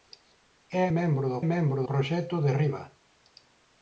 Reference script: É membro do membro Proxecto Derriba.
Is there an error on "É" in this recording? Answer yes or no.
no